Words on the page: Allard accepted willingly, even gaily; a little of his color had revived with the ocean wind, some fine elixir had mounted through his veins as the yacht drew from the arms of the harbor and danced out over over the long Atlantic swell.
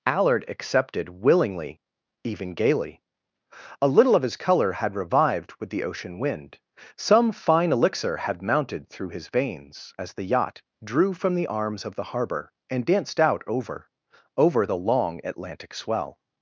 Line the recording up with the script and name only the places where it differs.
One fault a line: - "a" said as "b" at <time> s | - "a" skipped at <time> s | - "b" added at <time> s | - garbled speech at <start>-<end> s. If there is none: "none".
none